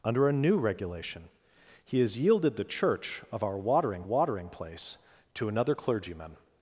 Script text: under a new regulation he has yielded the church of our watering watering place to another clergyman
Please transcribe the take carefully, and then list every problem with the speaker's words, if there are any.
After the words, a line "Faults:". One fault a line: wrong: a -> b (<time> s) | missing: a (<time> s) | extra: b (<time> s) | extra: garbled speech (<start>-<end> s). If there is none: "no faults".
under a new regulation he has yielded the church of our watering watering place to another clergyman
Faults:
no faults